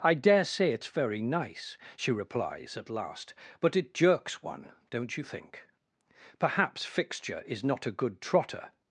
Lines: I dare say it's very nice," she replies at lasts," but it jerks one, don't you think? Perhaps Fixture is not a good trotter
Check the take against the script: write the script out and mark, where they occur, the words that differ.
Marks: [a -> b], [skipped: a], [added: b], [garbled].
I dare say it's very nice," she replies at [lasts," -> last] but it jerks one, don't you think? Perhaps Fixture is not a good trotter